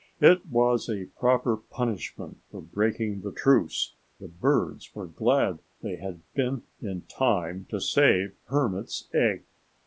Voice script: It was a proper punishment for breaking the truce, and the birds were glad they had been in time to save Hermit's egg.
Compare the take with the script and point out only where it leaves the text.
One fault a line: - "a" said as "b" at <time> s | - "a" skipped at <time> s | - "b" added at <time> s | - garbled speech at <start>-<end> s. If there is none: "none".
- "and" skipped at 4.0 s